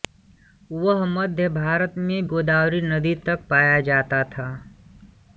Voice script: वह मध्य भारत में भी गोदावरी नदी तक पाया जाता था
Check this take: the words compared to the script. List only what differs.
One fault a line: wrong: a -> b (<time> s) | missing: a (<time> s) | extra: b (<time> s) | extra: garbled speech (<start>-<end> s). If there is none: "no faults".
missing: भी (2.3 s)